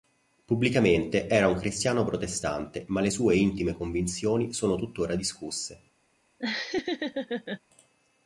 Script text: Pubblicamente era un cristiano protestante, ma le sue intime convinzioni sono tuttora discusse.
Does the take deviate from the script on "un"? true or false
false